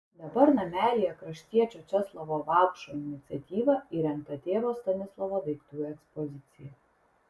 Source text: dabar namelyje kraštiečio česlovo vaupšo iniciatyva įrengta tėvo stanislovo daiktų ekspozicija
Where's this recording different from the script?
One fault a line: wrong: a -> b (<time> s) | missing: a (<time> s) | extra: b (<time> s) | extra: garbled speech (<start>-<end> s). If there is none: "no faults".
no faults